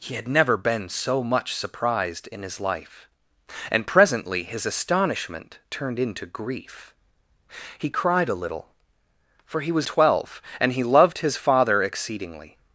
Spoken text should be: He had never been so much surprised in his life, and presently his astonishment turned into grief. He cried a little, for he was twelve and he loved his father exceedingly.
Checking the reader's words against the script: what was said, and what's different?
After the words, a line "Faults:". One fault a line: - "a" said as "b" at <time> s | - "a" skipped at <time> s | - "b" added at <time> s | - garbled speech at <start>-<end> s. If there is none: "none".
He had never been so much surprised in his life, and presently his astonishment turned into grief. He cried a little, for he was twelve and he loved his father exceedingly.
Faults:
none